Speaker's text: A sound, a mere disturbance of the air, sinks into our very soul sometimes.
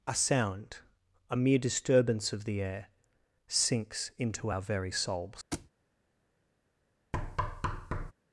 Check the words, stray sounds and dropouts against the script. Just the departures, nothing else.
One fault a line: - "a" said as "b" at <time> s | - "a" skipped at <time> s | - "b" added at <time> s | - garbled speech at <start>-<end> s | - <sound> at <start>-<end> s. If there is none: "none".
- "soul sometimes" said as "souls" at 4.9 s
- thud at 5.5-5.7 s
- thud at 7.1-8.1 s